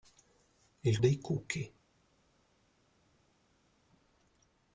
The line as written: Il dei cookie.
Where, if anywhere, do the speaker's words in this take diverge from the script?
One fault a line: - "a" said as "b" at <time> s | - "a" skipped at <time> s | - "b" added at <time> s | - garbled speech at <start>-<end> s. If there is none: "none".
none